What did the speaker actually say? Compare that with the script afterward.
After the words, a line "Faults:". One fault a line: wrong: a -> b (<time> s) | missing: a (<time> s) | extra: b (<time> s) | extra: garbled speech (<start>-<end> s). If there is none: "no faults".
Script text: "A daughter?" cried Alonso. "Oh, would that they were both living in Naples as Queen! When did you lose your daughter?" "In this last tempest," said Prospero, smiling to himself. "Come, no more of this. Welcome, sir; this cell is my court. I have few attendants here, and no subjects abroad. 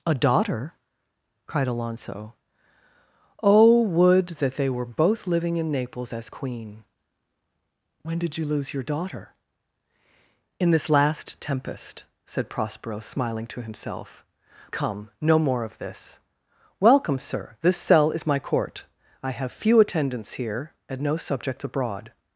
"A daughter?" cried Alonso. "Oh, would that they were both living in Naples as Queen! When did you lose your daughter?" "In this last tempest," said Prospero, smiling to himself. "Come, no more of this. Welcome, sir; this cell is my court. I have few attendants here, and no subjects abroad.
Faults:
no faults